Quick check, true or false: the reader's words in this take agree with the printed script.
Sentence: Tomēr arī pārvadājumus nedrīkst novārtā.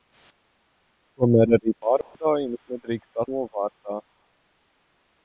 true